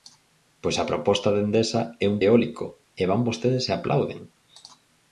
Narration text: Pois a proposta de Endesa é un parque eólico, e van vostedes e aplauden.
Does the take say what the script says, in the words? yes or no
no